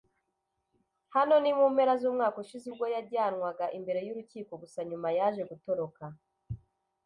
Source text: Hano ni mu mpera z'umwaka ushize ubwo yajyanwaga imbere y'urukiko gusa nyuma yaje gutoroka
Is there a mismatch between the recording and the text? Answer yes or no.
no